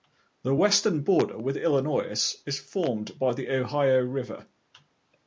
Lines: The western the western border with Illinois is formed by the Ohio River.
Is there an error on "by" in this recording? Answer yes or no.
no